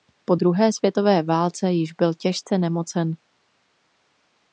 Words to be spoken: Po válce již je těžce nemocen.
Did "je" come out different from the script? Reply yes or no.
yes